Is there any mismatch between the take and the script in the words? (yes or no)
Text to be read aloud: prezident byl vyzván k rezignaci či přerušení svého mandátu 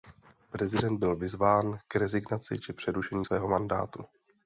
no